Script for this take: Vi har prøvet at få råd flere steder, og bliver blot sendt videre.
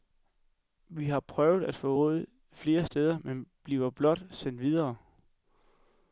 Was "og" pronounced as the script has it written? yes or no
no